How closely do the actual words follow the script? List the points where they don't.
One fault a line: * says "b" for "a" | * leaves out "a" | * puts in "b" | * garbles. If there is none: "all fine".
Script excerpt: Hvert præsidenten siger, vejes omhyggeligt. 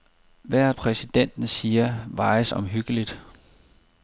all fine